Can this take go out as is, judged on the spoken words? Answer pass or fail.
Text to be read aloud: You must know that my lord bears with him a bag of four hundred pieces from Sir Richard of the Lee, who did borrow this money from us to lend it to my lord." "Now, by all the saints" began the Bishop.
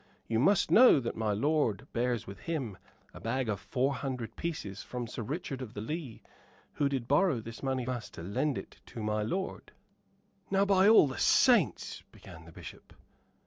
fail